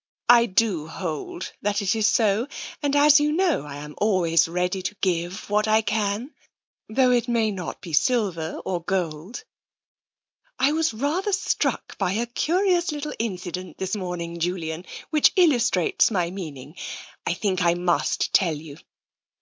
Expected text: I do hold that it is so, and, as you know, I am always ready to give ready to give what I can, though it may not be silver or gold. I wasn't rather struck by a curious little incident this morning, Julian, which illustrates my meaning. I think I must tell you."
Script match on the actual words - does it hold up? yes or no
no